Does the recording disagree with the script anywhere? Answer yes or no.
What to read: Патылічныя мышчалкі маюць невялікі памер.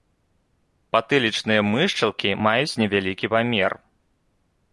no